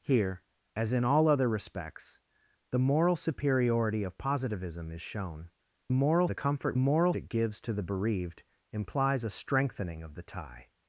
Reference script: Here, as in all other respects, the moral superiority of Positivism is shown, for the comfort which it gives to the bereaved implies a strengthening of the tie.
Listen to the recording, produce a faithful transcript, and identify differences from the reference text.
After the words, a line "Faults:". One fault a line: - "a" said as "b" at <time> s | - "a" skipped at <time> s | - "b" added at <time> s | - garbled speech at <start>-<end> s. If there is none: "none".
Here, as in all other respects, the moral superiority of Positivism is shown, moral the comfort moral it gives to the bereaved implies a strengthening of the tie.
Faults:
- "for" said as "moral" at 5.9 s
- "which" said as "moral" at 6.8 s